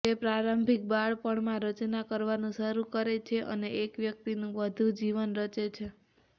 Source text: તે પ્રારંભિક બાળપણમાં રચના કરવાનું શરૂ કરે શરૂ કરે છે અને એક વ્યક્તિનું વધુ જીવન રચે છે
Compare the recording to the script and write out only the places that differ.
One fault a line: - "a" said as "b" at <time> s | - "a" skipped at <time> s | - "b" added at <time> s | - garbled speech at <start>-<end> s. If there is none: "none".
- "શરૂ કરે" skipped at 3.2 s